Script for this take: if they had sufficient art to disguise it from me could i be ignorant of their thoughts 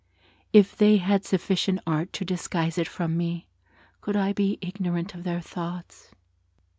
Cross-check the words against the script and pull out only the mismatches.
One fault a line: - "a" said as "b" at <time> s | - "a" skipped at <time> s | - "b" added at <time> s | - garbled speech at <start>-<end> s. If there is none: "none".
none